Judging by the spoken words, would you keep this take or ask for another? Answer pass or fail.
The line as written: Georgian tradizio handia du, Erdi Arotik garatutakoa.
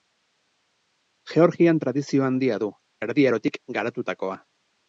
pass